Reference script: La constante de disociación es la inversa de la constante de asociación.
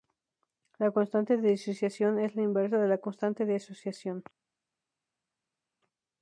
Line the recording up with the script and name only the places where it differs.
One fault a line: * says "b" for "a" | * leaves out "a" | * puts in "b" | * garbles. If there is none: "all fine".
all fine